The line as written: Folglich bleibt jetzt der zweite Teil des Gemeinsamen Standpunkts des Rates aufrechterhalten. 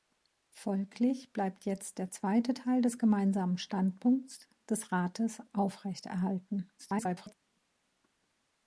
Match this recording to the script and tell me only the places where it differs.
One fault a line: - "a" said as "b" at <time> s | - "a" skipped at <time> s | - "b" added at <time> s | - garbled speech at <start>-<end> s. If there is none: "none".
- garbled speech at 6.8-7.3 s